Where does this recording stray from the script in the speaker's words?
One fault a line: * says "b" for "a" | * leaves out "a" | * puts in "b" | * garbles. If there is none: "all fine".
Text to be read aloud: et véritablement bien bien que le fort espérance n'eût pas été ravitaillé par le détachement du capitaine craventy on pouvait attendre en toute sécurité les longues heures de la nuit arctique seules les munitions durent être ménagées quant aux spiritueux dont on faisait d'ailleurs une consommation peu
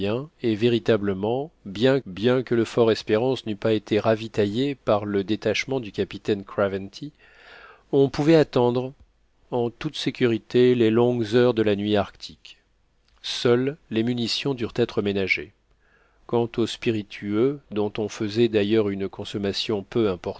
all fine